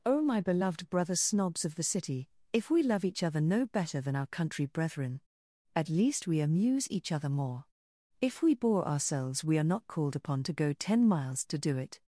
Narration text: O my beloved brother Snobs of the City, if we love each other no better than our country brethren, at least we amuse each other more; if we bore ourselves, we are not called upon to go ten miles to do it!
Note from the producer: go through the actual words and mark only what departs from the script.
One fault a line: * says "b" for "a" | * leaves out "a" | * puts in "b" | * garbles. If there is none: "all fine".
all fine